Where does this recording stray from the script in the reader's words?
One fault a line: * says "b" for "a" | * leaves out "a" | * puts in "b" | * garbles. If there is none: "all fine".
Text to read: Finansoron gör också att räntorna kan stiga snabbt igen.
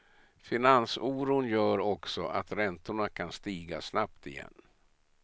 all fine